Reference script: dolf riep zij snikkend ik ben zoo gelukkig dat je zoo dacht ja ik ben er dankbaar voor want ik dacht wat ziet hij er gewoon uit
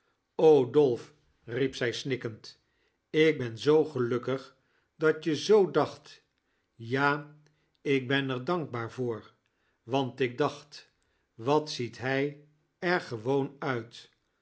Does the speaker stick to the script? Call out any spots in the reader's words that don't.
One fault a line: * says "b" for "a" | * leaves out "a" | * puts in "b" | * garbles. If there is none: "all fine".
all fine